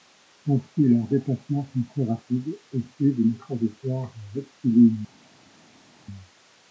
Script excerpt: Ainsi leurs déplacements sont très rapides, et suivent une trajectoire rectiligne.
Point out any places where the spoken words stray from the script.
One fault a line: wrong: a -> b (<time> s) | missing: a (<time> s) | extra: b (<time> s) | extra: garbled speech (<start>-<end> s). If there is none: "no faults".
no faults